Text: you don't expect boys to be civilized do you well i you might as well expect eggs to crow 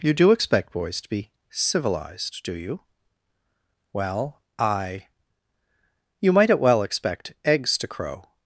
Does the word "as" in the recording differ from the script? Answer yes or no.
yes